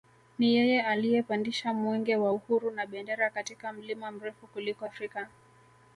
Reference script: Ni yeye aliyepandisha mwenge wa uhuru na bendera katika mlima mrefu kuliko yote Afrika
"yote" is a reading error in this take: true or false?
true